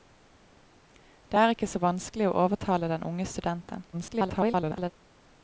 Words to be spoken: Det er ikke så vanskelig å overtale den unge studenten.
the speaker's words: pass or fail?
fail